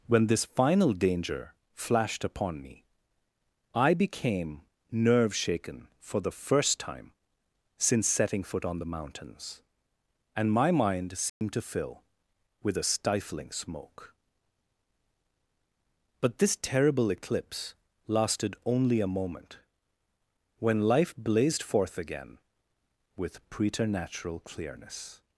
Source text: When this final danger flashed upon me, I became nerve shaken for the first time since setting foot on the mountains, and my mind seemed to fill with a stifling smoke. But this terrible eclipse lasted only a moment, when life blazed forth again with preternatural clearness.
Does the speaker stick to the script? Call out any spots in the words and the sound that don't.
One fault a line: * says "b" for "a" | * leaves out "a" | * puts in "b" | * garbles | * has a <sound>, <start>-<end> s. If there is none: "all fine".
* has a dropout, 11.3-11.4 s